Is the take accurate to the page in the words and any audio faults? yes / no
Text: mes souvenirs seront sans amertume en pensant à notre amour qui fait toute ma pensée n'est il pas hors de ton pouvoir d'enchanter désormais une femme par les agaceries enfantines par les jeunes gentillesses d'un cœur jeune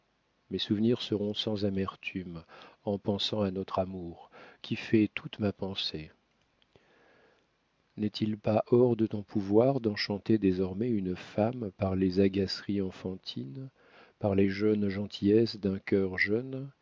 yes